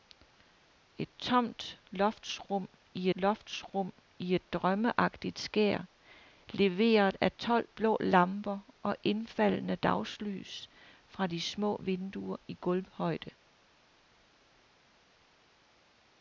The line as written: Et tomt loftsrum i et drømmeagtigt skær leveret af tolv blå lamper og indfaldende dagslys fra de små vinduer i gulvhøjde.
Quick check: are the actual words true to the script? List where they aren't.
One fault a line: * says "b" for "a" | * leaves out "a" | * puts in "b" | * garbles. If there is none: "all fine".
* puts in "loftsrum i"